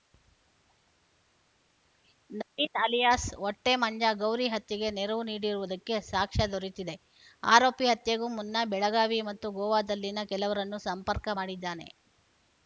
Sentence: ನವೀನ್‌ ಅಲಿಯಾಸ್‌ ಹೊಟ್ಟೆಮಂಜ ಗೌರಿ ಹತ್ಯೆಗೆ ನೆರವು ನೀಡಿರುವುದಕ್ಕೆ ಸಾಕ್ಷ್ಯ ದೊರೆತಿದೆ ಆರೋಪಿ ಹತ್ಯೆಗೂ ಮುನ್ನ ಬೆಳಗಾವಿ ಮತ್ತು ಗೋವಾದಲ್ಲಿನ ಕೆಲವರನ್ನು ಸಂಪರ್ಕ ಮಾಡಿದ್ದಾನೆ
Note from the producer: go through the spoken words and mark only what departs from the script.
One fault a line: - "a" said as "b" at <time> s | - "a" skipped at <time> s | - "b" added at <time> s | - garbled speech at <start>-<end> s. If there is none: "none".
none